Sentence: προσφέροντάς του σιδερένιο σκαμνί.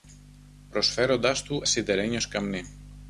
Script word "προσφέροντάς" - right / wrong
right